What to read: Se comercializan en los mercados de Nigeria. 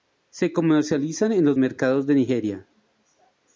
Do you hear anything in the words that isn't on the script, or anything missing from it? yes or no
no